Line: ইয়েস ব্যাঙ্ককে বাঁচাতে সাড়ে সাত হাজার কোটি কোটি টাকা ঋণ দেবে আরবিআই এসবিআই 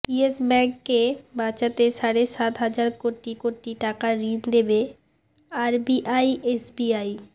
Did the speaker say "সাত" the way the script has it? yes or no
yes